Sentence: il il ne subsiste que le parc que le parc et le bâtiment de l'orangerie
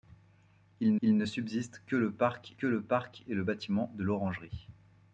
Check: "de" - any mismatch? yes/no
no